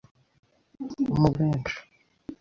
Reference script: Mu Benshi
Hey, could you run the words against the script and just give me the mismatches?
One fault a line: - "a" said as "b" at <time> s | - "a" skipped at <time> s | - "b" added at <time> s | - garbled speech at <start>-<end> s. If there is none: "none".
none